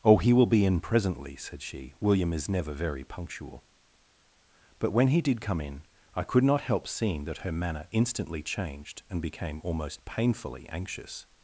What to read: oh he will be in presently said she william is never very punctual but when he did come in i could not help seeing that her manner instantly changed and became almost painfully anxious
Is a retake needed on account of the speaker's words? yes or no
no